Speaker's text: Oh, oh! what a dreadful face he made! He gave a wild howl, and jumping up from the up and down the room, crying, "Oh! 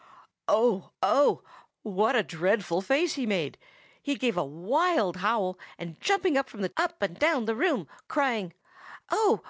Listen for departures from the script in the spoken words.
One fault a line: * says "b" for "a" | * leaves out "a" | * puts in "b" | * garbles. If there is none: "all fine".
all fine